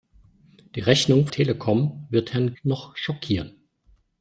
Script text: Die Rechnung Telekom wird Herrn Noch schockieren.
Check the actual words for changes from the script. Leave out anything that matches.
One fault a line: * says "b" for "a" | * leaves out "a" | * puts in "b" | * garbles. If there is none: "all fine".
all fine